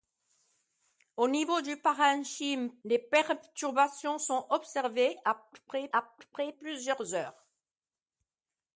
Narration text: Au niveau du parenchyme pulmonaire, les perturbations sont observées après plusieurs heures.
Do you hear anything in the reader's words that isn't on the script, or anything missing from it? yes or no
yes